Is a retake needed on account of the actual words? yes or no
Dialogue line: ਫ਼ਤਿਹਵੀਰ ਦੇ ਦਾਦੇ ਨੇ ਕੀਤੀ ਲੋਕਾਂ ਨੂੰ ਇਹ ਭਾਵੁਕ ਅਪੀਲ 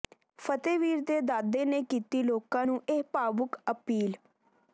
no